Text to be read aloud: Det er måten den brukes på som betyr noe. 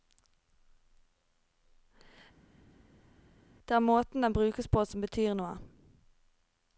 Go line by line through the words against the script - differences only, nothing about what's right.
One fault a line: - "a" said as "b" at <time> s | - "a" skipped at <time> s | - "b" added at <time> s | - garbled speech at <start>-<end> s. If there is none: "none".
none